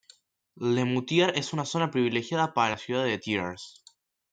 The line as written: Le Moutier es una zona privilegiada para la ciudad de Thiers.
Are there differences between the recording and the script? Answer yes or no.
no